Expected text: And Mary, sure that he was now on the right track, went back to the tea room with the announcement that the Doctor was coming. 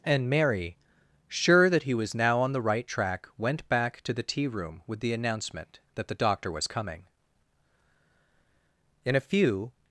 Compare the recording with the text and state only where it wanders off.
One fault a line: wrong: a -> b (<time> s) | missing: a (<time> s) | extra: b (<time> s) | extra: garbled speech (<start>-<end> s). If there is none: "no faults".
extra: In a few (9.1 s)